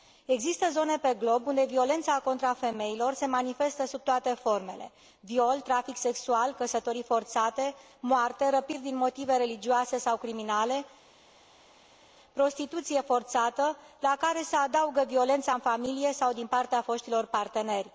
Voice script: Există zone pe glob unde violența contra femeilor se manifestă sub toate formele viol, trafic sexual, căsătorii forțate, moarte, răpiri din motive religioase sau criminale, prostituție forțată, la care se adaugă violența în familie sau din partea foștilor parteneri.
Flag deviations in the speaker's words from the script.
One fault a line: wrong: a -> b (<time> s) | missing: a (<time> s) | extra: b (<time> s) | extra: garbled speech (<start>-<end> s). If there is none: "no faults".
no faults